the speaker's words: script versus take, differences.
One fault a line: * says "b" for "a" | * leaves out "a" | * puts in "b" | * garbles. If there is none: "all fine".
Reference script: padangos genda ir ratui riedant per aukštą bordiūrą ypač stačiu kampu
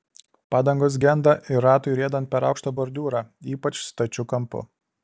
all fine